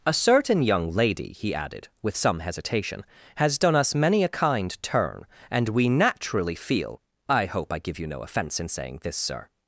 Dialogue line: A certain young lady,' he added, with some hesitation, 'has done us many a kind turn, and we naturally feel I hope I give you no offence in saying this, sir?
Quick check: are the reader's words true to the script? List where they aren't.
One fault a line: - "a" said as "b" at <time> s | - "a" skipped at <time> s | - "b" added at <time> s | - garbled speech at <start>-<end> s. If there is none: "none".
none